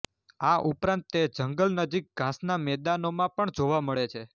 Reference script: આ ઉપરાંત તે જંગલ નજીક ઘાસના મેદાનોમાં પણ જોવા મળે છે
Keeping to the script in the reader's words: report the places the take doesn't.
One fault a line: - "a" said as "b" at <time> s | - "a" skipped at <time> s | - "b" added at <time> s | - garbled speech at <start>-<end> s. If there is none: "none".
none